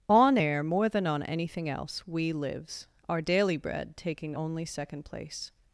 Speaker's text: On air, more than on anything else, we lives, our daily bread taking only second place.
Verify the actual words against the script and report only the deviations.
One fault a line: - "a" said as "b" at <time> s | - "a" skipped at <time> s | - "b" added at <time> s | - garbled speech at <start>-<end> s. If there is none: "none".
none